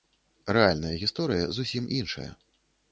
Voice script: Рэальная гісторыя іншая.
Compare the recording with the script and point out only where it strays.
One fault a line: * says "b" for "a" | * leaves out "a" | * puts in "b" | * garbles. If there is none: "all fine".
* puts in "зусім"